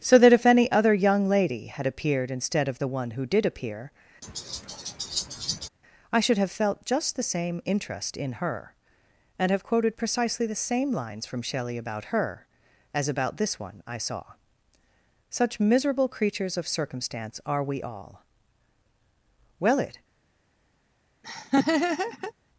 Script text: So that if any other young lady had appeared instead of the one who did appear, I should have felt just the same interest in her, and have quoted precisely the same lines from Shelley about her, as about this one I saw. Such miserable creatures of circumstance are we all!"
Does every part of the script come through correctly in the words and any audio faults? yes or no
no